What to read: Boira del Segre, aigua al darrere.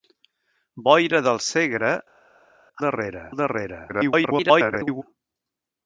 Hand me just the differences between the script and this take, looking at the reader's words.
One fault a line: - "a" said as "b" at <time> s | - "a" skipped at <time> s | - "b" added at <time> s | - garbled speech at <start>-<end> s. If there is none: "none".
- "aigua" said as "darrere" at 2.9 s
- garbled speech at 3.9-5.0 s